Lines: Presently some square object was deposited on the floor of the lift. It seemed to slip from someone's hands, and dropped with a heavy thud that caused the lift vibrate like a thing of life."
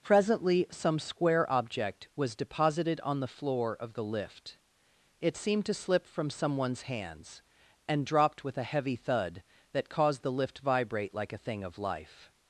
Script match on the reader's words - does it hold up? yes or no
yes